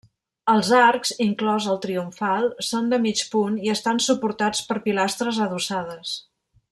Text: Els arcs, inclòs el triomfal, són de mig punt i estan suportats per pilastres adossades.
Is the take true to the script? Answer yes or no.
yes